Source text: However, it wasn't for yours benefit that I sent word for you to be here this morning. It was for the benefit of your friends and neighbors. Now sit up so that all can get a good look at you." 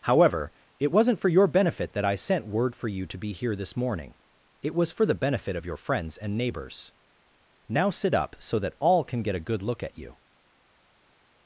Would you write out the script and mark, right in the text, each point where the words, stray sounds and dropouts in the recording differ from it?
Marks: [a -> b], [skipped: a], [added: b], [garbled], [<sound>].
However, it wasn't for [yours -> your] benefit that I sent word for you to be here this morning. It was for the benefit of your friends and neighbors. Now sit up so that all can get a good look at you."